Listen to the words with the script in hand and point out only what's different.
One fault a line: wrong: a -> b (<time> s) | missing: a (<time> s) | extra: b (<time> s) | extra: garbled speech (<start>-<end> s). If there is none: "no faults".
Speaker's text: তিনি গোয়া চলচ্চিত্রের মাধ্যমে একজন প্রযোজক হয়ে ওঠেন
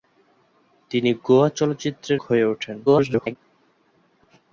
missing: মাধ্যমে একজন প্রযোজক (2.2 s)
extra: garbled speech (2.9-3.4 s)